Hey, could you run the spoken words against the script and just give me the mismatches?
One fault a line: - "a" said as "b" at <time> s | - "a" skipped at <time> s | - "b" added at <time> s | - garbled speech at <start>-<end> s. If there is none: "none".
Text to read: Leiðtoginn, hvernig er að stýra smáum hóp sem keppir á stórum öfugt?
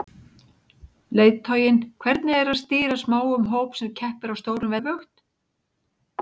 none